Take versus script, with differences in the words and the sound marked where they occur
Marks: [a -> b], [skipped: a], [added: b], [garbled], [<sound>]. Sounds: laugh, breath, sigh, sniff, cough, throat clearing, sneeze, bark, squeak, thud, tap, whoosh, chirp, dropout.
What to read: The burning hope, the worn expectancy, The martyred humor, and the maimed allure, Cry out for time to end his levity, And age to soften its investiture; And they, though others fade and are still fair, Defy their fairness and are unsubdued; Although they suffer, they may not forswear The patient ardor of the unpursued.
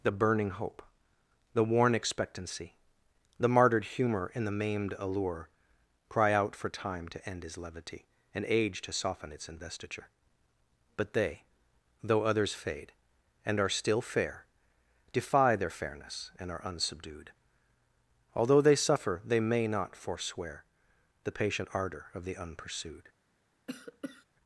The burning hope, the worn expectancy, The martyred humor, and the maimed allure, Cry out for time to end his levity, And age to soften its investiture; [And -> But] they, though others fade and are still fair, Defy their fairness and are unsubdued; Although they suffer, they may not forswear The patient ardor of the unpursued. [cough]